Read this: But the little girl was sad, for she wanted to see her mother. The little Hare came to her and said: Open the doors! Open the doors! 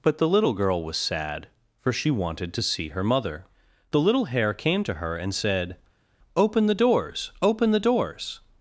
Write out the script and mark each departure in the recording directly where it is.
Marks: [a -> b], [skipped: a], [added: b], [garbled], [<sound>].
But the little girl was sad, for she wanted to see her mother. The little Hare came to her and said: Open the doors! Open the doors!